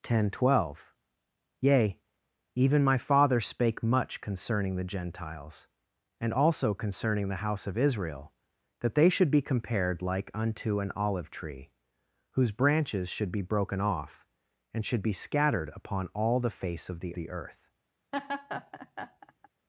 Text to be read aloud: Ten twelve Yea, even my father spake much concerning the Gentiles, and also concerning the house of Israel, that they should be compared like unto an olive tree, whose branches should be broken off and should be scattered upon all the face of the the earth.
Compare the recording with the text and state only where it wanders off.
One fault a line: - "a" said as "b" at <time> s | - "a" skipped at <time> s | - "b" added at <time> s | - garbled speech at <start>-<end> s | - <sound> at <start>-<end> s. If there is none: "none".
- laugh at 18.1-19.5 s